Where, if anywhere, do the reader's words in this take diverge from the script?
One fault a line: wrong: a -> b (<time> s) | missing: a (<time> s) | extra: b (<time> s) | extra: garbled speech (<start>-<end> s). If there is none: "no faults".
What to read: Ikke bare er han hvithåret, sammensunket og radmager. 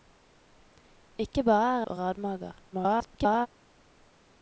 missing: han hvithåret sammensunket (1.9 s)
extra: garbled speech (2.7-3.5 s)